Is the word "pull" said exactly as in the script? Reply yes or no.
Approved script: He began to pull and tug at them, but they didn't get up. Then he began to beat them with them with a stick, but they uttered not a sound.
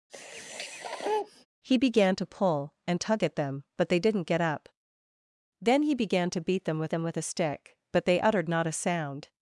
yes